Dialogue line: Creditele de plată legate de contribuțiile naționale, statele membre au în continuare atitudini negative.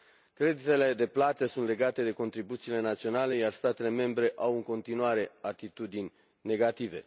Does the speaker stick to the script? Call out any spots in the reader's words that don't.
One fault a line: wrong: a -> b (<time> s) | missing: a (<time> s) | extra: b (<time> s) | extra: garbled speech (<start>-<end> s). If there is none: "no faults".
extra: sunt (1.4 s)
extra: iar (3.3 s)